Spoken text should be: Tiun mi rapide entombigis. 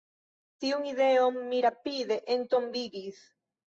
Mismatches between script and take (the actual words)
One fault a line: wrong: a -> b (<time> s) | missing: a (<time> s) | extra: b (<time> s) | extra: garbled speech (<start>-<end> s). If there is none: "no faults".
extra: ideon (0.9 s)